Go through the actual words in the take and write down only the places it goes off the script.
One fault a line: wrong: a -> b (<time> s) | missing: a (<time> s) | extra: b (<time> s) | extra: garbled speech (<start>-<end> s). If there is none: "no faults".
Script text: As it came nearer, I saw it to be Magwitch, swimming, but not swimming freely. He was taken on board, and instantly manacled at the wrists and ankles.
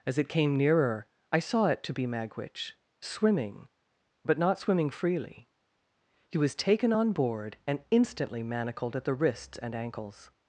no faults